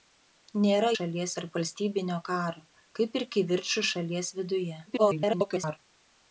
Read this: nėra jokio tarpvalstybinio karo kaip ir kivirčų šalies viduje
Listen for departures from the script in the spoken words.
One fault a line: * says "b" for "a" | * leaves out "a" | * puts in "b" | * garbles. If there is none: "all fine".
* says "šalies" for "jokio"
* garbles